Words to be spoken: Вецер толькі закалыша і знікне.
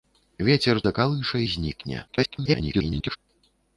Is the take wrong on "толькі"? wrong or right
wrong